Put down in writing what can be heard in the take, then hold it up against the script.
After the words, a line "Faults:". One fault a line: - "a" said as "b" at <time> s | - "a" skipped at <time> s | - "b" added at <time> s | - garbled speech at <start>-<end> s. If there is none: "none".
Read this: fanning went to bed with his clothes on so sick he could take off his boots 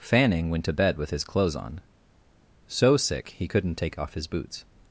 fanning went to bed with his clothes on so sick he couldn't take off his boots
Faults:
- "could" said as "couldn't" at 3.5 s